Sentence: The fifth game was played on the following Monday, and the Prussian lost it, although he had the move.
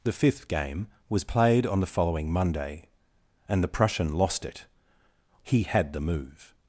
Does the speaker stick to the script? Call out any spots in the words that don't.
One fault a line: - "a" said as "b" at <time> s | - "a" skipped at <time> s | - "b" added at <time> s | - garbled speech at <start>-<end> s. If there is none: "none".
- "although" skipped at 4.7 s